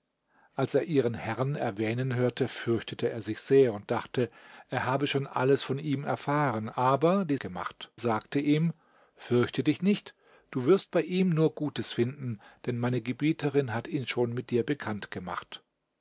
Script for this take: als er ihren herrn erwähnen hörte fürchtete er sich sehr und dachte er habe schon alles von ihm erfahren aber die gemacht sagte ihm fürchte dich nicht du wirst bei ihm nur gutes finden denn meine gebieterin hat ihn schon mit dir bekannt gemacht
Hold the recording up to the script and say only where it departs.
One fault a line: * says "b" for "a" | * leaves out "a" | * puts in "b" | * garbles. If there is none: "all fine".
all fine